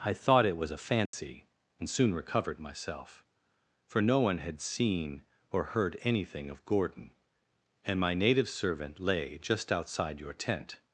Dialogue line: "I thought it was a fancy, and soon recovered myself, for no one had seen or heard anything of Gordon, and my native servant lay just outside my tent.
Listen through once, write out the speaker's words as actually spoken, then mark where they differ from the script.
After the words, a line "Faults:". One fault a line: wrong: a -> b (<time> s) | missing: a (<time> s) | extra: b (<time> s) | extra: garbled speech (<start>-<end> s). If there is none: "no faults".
"I thought it was a fancy, and soon recovered myself, for no one had seen or heard anything of Gordon, and my native servant lay just outside your tent.
Faults:
wrong: my -> your (10.2 s)